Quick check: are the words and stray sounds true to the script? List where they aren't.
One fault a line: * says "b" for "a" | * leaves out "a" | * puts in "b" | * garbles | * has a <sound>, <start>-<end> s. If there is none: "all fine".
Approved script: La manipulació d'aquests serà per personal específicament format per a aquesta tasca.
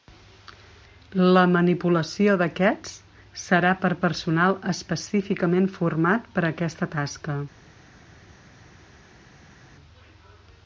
all fine